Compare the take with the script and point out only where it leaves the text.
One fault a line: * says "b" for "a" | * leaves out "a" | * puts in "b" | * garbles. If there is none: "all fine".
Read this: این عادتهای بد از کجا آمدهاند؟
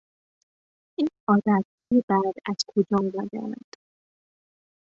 all fine